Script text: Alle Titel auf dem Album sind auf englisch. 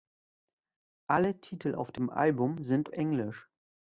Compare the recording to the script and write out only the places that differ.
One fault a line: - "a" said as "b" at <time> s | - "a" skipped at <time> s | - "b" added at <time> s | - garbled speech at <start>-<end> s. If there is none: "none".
- "auf" skipped at 2.9 s